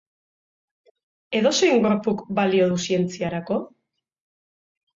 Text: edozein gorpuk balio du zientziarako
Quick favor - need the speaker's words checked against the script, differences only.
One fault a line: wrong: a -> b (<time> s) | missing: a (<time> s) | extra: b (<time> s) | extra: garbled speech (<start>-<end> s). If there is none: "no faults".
no faults